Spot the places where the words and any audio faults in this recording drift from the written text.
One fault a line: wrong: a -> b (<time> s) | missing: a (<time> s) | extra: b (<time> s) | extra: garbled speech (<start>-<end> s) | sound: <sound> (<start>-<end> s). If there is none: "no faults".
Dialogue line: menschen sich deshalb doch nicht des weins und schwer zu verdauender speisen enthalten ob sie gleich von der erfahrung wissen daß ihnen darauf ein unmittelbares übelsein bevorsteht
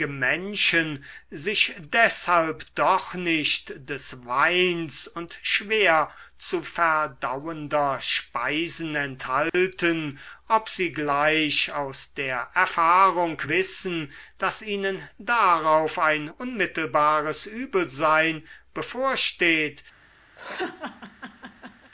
sound: dropout (9.5-9.5 s)
wrong: von -> aus (11.7 s)
sound: laugh (20.4-21.9 s)